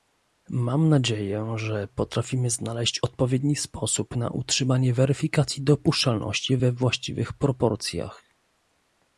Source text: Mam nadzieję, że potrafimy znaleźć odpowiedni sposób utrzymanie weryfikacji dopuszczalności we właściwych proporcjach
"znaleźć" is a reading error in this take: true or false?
false